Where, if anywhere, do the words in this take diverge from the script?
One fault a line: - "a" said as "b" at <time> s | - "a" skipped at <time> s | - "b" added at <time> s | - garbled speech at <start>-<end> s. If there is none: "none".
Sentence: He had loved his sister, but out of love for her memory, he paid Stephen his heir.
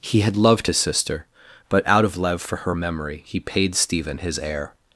none